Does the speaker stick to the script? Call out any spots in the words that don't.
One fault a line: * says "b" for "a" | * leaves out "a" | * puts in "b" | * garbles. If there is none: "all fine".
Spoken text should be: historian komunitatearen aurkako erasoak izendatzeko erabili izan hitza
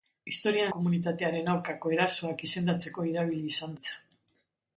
all fine